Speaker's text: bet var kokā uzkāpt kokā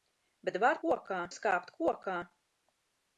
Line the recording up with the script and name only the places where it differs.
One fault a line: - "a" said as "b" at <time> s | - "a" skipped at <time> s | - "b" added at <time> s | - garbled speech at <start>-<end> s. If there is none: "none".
none